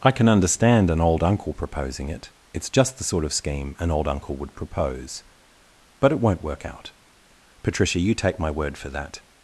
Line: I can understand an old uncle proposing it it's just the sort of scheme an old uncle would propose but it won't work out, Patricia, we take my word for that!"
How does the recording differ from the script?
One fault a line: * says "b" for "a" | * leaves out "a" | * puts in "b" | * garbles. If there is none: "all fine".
* says "you" for "we"